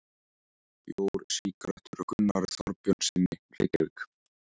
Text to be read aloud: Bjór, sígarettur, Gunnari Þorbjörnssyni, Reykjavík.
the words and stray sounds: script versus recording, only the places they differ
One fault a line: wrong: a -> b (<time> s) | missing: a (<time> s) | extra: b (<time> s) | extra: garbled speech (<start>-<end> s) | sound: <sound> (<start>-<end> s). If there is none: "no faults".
no faults